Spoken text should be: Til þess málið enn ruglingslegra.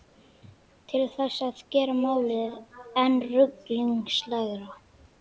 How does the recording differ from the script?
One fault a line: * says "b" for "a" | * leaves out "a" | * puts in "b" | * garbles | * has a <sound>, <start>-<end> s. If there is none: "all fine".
* puts in "að gera"